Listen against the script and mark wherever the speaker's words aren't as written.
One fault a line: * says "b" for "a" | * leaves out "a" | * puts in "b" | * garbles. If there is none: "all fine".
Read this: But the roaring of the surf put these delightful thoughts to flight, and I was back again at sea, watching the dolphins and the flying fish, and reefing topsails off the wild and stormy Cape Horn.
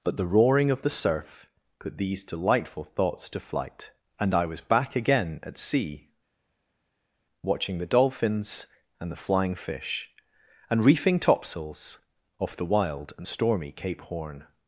all fine